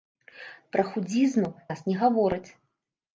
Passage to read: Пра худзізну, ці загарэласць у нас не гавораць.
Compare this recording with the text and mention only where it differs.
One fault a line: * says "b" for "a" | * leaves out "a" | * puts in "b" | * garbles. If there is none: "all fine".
* leaves out "ці загарэласць у"